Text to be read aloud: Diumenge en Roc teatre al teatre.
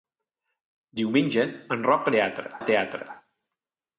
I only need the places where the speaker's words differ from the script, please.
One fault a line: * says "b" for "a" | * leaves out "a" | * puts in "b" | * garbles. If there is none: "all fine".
all fine